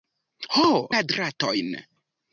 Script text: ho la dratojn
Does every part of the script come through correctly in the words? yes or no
yes